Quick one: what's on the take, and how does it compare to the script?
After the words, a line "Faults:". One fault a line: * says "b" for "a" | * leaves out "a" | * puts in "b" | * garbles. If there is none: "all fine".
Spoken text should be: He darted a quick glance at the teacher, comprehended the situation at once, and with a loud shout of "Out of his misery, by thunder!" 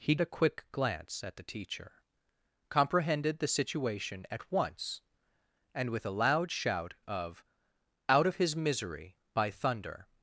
He a quick glance at the teacher, comprehended the situation at once, and with a loud shout of "Out of his misery, by thunder!"
Faults:
* leaves out "darted"